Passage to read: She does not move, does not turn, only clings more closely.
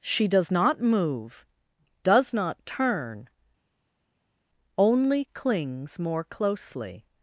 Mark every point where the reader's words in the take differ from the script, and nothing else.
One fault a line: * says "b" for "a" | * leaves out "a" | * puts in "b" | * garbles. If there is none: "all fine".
all fine